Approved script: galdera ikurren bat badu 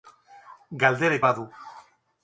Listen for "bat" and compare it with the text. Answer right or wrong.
wrong